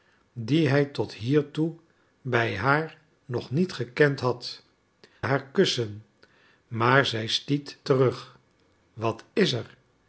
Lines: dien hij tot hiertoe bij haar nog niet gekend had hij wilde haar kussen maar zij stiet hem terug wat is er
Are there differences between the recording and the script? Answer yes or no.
yes